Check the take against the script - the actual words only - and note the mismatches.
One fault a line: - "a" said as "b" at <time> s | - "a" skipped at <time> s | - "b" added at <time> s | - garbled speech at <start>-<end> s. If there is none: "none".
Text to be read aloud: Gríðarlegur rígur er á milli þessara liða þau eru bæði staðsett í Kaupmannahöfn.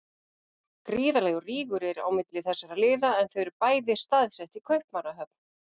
- "en" added at 3.2 s